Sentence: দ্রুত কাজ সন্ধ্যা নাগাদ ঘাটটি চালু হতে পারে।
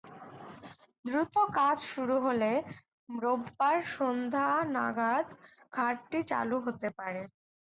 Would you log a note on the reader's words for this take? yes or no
yes